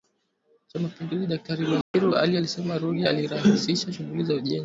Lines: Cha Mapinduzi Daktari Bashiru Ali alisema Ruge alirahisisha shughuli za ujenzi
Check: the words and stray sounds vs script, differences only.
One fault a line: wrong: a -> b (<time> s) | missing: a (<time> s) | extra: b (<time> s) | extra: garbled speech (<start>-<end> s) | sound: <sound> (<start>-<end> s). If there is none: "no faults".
sound: dropout (1.8-1.9 s)